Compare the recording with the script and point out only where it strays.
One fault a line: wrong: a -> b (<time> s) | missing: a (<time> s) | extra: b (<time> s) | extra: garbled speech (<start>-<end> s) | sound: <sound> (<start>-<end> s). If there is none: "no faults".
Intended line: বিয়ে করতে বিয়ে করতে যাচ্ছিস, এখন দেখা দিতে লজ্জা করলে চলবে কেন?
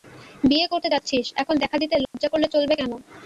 missing: বিয়ে করতে (0.9 s)
sound: dropout (2.0-2.1 s)